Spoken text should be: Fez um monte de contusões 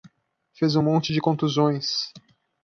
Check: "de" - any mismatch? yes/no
no